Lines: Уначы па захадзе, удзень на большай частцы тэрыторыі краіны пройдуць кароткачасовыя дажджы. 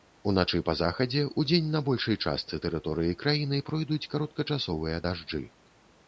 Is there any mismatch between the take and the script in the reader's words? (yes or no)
no